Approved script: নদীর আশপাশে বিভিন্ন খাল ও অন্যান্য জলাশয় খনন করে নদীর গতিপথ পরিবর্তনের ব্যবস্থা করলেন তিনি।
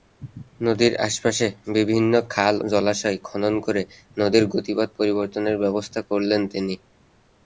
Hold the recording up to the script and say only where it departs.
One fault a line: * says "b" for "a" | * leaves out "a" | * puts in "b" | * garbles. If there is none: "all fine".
* leaves out "ও অন্যান্য"